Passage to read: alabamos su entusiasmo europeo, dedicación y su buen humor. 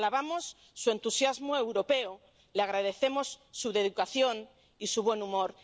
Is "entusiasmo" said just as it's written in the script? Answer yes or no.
yes